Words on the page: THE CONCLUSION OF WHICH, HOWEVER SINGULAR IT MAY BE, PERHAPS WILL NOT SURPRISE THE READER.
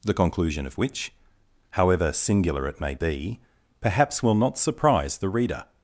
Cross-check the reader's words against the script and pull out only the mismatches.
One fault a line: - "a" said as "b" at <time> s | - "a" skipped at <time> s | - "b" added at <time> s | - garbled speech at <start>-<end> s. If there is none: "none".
none